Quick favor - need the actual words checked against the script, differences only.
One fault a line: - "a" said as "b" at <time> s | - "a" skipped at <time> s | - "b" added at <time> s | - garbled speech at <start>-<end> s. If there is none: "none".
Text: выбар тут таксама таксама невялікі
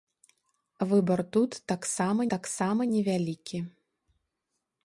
none